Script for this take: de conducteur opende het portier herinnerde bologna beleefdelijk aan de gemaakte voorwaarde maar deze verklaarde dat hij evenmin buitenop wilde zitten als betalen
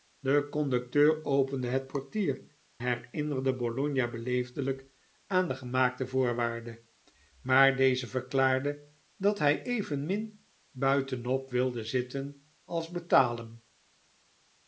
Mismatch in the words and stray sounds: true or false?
false